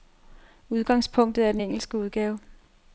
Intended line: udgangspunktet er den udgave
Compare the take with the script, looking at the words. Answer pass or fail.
fail